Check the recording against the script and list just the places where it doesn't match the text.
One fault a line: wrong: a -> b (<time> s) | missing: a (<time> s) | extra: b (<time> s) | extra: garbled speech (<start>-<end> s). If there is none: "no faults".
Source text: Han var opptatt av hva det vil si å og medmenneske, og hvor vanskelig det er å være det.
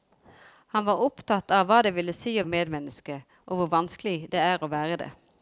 no faults